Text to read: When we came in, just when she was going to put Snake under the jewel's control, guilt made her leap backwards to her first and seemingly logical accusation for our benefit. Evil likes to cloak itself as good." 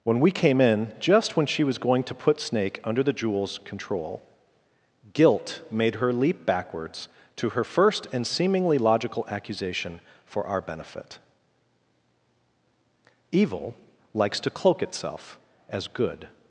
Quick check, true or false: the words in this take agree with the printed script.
true